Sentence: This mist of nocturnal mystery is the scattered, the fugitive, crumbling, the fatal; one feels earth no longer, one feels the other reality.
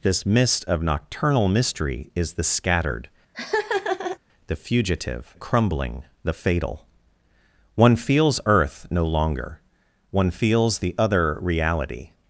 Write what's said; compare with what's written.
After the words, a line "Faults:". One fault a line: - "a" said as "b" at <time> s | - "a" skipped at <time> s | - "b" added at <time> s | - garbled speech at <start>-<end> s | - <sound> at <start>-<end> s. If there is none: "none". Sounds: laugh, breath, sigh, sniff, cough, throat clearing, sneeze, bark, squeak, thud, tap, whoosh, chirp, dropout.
This mist of nocturnal mystery is the scattered, the fugitive, crumbling, the fatal; one feels earth no longer, one feels the other reality.
Faults:
- laugh at 3.3-4.2 s